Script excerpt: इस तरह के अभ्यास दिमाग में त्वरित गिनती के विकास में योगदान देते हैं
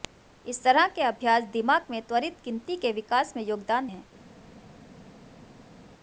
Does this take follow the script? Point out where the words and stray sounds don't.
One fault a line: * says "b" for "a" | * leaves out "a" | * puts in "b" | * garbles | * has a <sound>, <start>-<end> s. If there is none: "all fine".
* leaves out "देते"